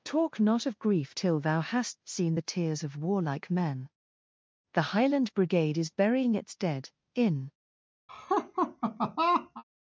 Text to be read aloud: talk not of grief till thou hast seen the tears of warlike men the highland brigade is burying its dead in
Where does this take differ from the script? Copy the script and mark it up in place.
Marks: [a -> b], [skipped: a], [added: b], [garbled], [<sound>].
talk not of grief till thou hast seen the tears of warlike men the highland brigade is burying its dead in [laugh]